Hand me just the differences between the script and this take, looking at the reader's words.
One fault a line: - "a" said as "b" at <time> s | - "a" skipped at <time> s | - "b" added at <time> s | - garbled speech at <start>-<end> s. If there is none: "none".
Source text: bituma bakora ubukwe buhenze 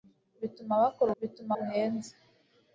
- "ubukwe" said as "bituma" at 1.2 s